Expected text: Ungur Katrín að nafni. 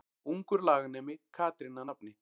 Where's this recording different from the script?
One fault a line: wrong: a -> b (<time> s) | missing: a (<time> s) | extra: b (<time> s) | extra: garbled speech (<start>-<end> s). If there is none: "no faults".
extra: laganemi (0.7 s)